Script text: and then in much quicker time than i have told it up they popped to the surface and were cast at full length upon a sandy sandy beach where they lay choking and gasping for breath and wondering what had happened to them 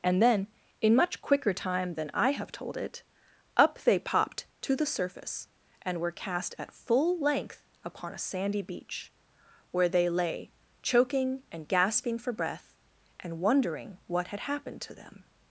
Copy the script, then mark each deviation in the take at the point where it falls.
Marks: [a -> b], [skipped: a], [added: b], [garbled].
and then in much quicker time than i have told it up they popped to the surface and were cast at full length upon a sandy [skipped: sandy] beach where they lay choking and gasping for breath and wondering what had happened to them